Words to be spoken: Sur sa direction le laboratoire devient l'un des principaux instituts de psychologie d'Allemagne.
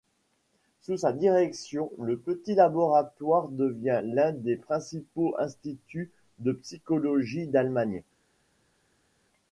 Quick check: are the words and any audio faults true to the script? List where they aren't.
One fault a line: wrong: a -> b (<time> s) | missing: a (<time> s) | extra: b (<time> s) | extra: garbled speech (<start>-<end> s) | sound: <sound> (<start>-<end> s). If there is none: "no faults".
wrong: Sur -> Sous (0.8 s)
extra: petit (2.2 s)